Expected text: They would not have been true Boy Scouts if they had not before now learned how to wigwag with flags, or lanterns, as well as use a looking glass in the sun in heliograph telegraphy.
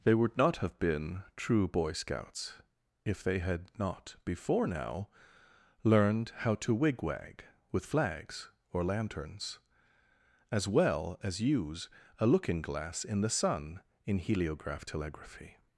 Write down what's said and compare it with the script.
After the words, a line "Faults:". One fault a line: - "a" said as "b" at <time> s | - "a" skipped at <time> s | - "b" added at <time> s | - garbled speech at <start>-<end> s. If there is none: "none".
They would not have been true Boy Scouts if they had not before now learned how to wigwag with flags, or lanterns, as well as use a looking glass in the sun in heliograph telegraphy.
Faults:
none